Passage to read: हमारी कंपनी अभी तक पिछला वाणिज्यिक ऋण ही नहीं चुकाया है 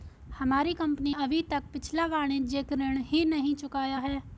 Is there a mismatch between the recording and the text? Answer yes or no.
no